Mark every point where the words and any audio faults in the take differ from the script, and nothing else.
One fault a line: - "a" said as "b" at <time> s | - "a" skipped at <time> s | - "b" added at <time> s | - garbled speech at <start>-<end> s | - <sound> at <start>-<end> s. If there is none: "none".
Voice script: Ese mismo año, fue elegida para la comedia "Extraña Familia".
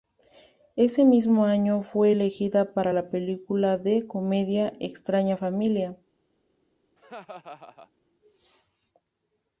- "película de" added at 3.1 s
- laugh at 7.0-7.9 s